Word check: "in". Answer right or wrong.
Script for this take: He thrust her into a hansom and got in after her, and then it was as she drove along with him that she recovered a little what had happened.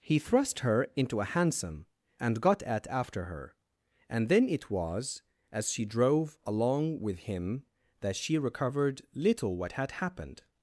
wrong